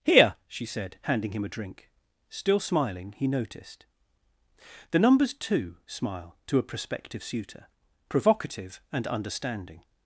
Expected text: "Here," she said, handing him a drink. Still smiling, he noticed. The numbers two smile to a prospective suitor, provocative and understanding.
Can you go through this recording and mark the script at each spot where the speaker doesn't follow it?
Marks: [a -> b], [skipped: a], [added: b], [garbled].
"Here," she said, handing him a drink. Still smiling, he noticed. The numbers two smile to a prospective suitor, provocative and understanding.